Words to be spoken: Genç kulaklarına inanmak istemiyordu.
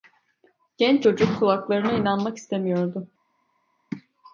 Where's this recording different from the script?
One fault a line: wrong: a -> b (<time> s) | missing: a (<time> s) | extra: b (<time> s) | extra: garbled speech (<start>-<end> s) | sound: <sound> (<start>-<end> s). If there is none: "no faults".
extra: çocuk (1.0 s)